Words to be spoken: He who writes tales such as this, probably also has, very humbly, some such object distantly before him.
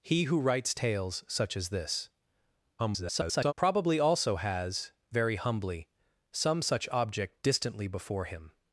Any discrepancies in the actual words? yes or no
yes